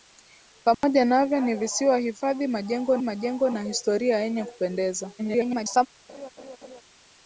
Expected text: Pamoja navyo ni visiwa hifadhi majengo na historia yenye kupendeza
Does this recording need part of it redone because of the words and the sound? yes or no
yes